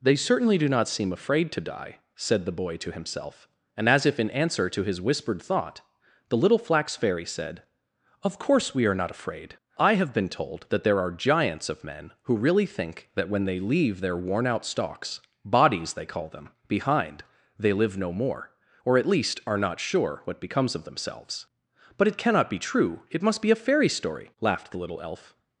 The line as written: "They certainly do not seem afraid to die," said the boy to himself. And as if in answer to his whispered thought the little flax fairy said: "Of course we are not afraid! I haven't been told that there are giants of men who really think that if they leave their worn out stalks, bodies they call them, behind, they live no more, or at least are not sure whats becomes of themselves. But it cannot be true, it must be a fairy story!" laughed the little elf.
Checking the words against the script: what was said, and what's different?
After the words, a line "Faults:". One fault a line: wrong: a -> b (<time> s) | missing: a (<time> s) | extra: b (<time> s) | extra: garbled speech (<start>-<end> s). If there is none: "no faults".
"They certainly do not seem afraid to die," said the boy to himself. And as if in answer to his whispered thought the little flax fairy said: "Of course we are not afraid! I have been told that there are giants of men who really think that when they leave their worn out stalks, bodies they call them, behind, they live no more, or at least are not sure what becomes of themselves. But it cannot be true, it must be a fairy story!" laughed the little elf.
Faults:
wrong: haven't -> have (9.9 s)
wrong: if -> when (13.3 s)
wrong: whats -> what (20.2 s)